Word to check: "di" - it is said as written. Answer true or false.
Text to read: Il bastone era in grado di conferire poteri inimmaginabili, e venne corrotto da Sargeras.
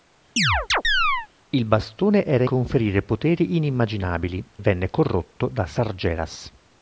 false